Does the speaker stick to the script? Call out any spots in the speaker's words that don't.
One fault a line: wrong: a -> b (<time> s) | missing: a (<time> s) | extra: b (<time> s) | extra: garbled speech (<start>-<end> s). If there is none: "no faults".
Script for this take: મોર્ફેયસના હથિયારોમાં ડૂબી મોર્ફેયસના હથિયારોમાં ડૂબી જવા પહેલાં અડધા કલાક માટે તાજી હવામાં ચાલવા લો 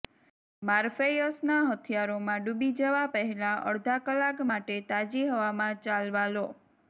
missing: મોર્ફેયસના હથિયારોમાં ડૂબી (2.7 s)